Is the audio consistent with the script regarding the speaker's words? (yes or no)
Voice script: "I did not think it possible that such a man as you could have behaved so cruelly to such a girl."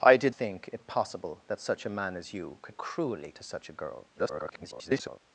no